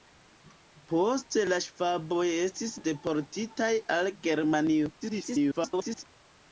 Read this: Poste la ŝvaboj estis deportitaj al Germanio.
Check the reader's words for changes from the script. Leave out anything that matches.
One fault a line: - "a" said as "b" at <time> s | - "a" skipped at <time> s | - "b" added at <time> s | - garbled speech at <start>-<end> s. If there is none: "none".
- garbled speech at 5.0-6.0 s